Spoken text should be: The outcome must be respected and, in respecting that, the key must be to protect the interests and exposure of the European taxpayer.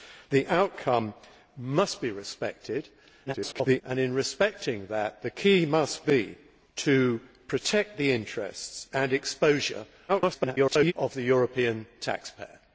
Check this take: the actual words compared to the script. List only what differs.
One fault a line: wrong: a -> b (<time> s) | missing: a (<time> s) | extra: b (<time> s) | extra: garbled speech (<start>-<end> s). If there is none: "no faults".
extra: garbled speech (3.3-3.8 s)
extra: garbled speech (10.1-10.9 s)